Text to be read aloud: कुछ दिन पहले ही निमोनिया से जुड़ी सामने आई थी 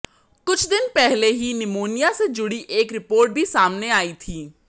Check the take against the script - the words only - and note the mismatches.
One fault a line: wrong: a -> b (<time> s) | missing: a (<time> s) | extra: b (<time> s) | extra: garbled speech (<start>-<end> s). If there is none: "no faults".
extra: एक रिपोर्ट भी (2.7 s)